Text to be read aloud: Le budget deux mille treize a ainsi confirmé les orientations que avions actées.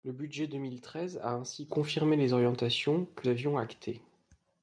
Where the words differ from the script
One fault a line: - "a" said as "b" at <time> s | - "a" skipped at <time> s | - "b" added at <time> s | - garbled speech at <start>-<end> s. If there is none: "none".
none